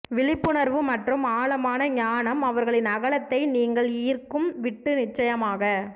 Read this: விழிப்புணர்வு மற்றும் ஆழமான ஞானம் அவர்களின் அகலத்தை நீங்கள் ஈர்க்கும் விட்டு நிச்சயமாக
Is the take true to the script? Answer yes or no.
yes